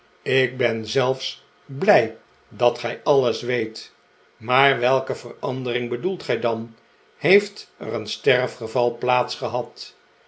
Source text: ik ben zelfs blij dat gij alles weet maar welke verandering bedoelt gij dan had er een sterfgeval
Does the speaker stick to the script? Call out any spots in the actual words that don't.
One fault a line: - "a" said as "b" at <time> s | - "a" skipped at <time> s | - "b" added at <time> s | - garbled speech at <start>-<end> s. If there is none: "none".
- "had" said as "heeft" at 7.2 s